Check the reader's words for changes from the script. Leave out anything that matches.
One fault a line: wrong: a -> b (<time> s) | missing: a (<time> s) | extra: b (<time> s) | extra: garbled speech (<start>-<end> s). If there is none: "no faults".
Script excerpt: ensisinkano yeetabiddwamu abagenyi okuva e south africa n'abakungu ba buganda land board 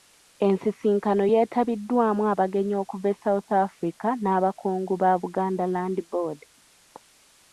no faults